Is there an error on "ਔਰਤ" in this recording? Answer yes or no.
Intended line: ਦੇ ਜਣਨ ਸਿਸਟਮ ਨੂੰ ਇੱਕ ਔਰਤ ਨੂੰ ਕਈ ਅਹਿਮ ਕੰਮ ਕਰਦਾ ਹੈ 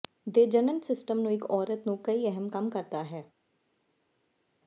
no